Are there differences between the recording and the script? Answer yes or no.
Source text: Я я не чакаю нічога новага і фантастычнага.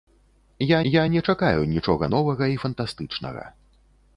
no